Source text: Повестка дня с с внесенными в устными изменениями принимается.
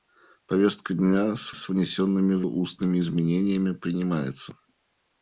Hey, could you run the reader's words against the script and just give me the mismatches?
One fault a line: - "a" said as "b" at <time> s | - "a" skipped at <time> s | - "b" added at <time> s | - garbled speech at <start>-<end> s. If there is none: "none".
none